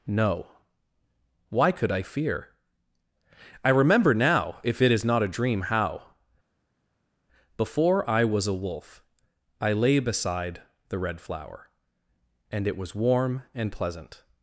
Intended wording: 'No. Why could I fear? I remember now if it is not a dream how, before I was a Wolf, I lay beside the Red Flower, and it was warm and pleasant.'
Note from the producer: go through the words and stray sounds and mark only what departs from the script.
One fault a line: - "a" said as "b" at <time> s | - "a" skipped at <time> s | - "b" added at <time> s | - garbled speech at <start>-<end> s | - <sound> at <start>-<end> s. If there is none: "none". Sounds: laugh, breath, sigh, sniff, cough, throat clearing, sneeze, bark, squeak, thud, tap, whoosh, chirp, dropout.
none